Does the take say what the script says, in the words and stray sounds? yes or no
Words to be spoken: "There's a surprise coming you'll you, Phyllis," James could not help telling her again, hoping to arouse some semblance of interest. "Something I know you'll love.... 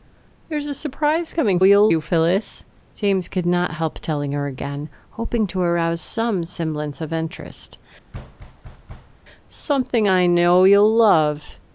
no